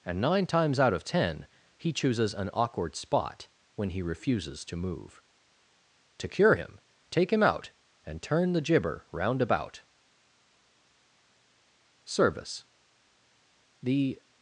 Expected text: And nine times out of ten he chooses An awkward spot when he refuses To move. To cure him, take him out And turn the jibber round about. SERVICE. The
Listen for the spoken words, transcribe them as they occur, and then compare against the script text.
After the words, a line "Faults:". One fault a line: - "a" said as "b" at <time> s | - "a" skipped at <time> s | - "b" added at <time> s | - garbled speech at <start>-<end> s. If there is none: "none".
And nine times out of ten he chooses An awkward spot when he refuses To move. To cure him, take him out And turn the jibber round about. SERVICE. The
Faults:
none